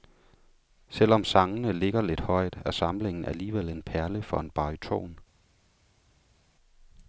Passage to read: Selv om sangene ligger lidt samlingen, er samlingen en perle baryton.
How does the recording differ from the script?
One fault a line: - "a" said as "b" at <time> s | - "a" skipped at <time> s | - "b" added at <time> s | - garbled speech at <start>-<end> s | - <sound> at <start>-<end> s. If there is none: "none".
- "samlingen" said as "højt" at 2.2 s
- "alligevel" added at 3.2 s
- "for en" added at 4.2 s